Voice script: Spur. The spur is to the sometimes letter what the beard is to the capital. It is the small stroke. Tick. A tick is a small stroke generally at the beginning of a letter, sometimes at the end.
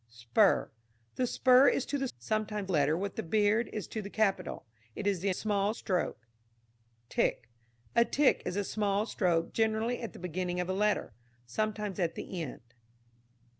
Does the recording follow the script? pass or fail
pass